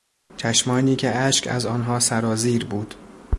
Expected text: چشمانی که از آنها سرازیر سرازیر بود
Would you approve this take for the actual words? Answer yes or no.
no